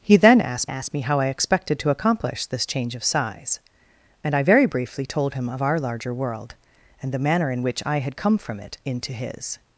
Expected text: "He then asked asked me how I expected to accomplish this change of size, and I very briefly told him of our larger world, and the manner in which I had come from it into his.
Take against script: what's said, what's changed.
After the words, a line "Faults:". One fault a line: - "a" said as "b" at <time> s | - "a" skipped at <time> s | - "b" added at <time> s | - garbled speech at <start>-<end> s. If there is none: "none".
"He then asked asked me how I expected to accomplish this change of size, and I very briefly told him of our larger world, and the manner in which I had come from it into his.
Faults:
none